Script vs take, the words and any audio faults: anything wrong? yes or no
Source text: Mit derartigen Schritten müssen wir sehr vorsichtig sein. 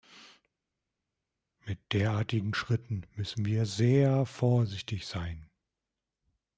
no